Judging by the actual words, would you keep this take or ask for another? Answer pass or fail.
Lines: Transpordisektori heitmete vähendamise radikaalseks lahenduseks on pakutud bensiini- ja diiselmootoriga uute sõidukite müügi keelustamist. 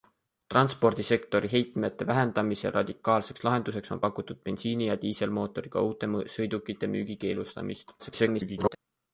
fail